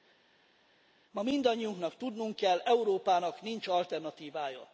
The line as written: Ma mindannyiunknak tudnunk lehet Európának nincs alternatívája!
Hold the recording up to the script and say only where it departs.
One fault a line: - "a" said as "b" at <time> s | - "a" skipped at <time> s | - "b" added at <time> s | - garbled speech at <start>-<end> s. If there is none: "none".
- "lehet" said as "kell" at 2.4 s